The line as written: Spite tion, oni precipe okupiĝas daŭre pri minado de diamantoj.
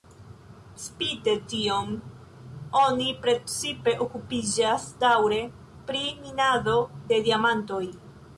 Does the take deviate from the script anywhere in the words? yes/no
no